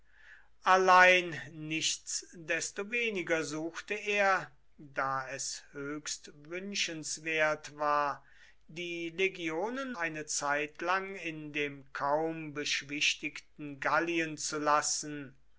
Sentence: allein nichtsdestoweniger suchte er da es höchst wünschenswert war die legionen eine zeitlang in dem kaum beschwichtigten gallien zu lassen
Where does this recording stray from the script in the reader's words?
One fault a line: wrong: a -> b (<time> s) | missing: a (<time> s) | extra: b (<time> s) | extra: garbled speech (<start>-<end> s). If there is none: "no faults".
no faults